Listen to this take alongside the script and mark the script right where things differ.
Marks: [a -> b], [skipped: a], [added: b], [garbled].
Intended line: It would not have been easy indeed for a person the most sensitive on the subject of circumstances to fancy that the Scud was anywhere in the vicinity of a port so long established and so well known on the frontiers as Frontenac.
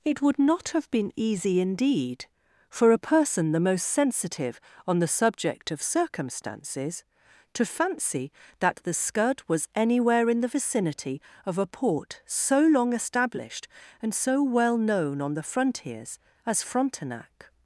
It would not have been easy indeed for a person the most sensitive on the subject of circumstances to fancy that the Scud was anywhere in the vicinity of a port so long established and so well known on the frontiers as Frontenac.